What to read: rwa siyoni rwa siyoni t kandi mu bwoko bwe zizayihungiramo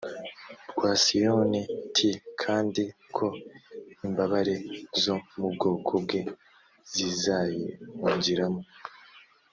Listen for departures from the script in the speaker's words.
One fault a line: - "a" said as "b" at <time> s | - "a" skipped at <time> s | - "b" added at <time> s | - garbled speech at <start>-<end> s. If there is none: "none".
- "rwa siyoni t kandi" said as "t kandi ko imbabare zo" at 1.9 s